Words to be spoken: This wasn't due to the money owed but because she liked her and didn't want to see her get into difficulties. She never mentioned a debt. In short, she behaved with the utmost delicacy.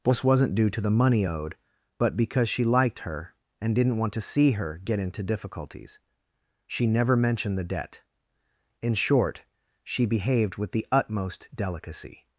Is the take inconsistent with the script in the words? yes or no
yes